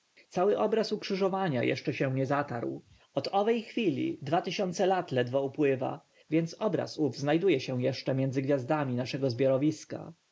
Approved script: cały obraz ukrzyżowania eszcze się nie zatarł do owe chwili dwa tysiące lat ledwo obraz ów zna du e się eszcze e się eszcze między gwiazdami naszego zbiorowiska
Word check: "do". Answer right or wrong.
wrong